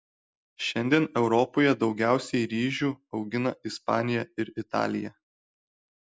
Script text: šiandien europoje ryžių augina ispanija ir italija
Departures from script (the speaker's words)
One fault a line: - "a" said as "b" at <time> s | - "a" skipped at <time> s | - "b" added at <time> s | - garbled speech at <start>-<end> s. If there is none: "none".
- "daugiausiai" added at 1.8 s